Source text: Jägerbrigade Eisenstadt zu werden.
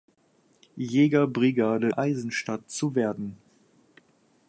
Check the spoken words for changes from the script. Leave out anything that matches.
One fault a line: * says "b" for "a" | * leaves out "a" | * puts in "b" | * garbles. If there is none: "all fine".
all fine